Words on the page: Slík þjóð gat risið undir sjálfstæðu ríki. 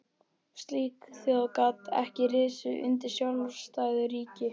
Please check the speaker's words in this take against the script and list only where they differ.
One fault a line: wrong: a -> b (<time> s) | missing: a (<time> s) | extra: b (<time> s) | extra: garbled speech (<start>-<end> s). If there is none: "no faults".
extra: ekki (2.0 s)